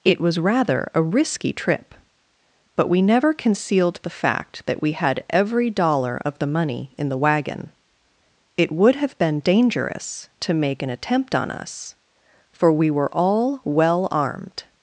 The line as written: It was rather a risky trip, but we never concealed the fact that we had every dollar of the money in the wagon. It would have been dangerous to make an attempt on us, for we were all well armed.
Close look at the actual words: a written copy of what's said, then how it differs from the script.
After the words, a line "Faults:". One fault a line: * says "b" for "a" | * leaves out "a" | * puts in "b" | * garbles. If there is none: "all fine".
It was rather a risky trip, but we never concealed the fact that we had every dollar of the money in the wagon. It would have been dangerous to make an attempt on us, for we were all well armed.
Faults:
all fine